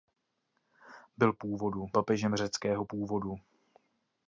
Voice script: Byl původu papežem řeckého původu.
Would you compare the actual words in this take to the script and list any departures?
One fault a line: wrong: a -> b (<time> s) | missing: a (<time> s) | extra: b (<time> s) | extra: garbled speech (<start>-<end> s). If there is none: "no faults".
no faults